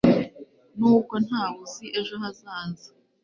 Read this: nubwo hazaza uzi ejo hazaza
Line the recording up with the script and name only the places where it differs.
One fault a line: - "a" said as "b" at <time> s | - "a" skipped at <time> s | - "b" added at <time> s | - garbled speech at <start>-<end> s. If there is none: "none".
- "hazaza" said as "ntawe" at 1.2 s